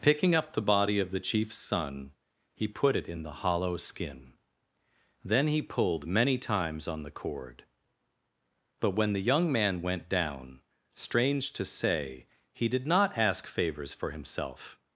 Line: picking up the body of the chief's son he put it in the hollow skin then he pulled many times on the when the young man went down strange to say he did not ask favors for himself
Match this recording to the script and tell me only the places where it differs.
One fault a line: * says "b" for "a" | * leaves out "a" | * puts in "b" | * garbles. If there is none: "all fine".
* puts in "cord but"